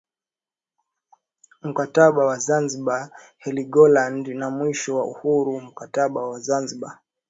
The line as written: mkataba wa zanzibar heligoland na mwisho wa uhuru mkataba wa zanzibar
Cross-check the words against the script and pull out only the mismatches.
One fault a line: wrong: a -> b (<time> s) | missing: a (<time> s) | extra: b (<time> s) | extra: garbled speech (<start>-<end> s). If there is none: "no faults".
no faults